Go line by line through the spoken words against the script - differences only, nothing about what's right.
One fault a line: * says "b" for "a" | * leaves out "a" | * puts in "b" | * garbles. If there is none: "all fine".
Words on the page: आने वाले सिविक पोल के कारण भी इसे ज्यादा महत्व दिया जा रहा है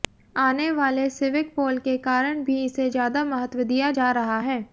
all fine